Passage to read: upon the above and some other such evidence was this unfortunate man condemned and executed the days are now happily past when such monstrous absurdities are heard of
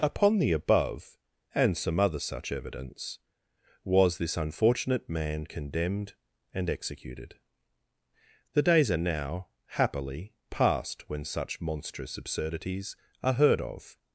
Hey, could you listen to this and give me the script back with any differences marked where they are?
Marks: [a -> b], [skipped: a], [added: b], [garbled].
upon the above and some other such evidence was this unfortunate man condemned and executed the days are now happily past when such monstrous absurdities are heard of